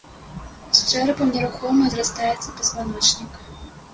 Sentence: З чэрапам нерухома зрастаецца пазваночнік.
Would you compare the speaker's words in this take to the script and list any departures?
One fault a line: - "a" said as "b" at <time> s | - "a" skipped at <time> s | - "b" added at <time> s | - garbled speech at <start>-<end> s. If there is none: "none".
none